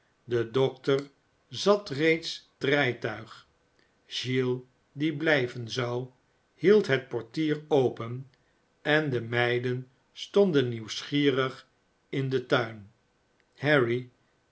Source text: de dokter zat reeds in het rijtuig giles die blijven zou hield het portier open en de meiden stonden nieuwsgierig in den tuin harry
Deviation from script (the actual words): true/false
true